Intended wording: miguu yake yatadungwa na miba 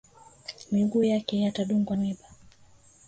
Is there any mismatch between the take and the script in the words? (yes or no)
yes